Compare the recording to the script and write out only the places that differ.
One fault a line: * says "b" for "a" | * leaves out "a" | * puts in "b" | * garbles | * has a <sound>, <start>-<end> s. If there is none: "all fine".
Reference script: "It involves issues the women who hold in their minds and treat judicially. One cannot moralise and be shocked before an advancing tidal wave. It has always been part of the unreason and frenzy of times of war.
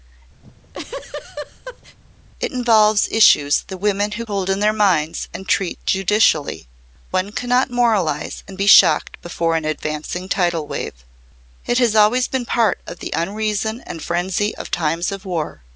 * has a laugh, 0.4-2.0 s